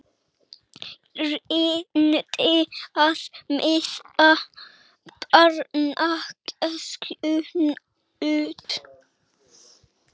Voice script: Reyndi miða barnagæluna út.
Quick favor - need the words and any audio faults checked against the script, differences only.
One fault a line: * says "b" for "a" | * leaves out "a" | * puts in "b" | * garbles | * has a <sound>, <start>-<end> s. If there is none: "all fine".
* puts in "að"
* has a dropout, 8.6-8.7 s